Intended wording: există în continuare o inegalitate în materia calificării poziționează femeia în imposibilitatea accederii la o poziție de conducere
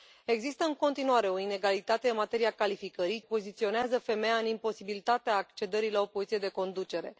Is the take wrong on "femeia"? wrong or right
right